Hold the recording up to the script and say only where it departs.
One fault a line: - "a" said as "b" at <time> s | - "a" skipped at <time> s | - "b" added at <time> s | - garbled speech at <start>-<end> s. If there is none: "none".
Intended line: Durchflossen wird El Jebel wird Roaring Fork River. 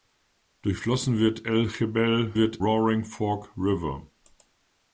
none